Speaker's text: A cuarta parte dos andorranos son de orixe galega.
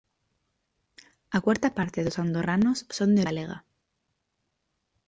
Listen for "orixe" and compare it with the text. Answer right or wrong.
wrong